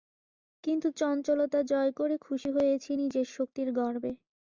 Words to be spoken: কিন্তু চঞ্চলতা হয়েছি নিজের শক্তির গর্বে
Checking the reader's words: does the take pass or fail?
fail